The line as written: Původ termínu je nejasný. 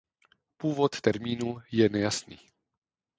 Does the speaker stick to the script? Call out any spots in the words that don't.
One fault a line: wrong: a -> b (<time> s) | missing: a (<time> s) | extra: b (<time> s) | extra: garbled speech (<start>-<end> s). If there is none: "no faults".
no faults